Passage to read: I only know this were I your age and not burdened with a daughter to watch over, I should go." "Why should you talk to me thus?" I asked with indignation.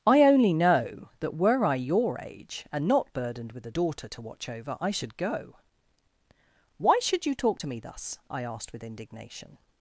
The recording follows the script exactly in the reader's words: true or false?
false